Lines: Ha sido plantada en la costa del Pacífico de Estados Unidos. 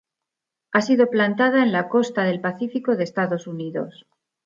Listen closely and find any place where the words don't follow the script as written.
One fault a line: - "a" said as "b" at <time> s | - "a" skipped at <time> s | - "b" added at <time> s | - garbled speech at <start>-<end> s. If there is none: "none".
none